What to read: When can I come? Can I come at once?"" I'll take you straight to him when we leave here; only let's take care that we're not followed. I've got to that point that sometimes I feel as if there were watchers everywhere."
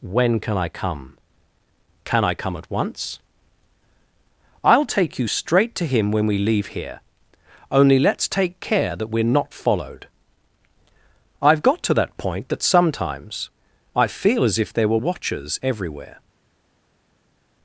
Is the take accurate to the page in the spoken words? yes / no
yes